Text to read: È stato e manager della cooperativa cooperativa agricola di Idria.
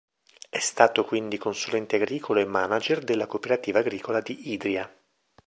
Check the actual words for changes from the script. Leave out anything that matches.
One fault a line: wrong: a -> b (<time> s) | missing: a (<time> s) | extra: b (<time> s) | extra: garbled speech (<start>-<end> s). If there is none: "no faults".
extra: quindi consulente agricolo (1.1 s)
missing: cooperativa (3.8 s)